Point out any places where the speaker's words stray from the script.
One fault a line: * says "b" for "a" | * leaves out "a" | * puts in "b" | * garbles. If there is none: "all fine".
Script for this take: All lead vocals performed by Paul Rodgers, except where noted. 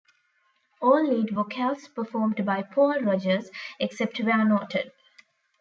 all fine